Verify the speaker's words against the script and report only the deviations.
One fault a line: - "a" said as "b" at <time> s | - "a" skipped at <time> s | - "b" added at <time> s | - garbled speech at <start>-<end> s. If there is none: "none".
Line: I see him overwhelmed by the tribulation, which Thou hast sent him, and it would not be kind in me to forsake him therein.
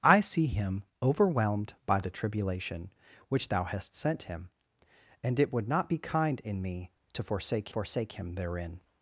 - "forsake" added at 7.7 s